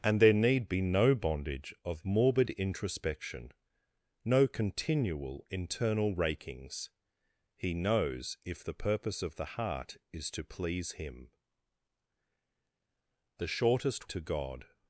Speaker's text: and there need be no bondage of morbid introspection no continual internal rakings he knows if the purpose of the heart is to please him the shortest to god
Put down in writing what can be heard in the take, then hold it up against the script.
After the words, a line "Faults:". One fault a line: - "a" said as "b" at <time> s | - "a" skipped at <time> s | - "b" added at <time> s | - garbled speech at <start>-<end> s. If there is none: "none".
and there need be no bondage of morbid introspection no continual internal rakings he knows if the purpose of the heart is to please him the shortest to god
Faults:
none